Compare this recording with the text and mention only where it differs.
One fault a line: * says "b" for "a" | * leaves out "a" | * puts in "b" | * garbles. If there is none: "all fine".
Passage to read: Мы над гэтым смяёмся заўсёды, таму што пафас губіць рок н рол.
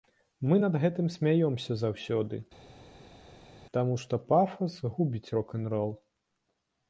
all fine